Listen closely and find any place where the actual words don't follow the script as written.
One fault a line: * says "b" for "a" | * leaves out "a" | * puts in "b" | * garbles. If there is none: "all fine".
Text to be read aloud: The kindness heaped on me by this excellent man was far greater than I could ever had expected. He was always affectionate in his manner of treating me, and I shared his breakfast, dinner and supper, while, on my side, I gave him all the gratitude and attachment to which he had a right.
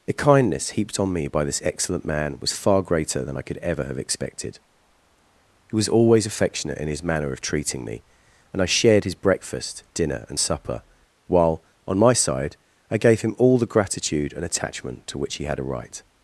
* says "have" for "had"